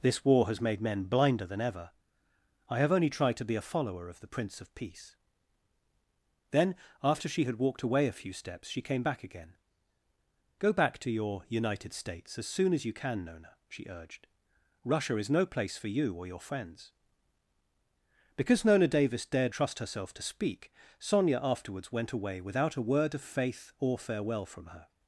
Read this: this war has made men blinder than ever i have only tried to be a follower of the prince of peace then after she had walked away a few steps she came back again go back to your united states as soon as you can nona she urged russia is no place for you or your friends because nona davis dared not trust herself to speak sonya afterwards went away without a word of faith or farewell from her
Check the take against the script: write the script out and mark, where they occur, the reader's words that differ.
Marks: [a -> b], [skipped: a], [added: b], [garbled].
this war has made men blinder than ever i have only tried to be a follower of the prince of peace then after she had walked away a few steps she came back again go back to your united states as soon as you can nona she urged russia is no place for you or your friends because nona davis dared [skipped: not] trust herself to speak sonya afterwards went away without a word of faith or farewell from her